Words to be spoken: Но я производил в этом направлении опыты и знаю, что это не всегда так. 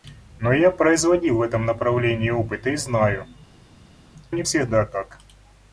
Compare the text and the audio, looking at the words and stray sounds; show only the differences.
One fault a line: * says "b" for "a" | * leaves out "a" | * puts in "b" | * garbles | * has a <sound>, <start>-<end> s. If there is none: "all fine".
* leaves out "что это"